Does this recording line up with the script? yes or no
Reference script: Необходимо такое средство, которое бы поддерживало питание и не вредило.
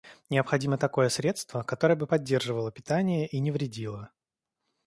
yes